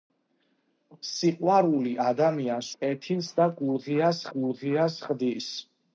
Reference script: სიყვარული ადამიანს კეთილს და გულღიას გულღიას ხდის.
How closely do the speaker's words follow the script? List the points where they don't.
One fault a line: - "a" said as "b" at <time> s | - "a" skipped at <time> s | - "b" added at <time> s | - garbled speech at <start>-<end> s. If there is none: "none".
none